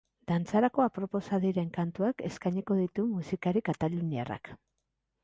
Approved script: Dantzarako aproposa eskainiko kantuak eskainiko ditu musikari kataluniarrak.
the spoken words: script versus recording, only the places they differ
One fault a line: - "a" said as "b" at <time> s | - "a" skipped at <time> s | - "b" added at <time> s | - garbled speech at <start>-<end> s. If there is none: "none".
- "eskainiko" said as "diren" at 1.4 s